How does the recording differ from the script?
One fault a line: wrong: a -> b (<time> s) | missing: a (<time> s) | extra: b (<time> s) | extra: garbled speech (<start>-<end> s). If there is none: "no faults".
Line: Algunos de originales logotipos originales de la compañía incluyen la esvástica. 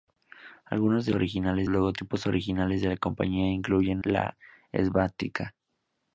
no faults